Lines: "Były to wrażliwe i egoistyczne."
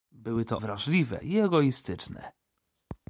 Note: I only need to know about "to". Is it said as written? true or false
true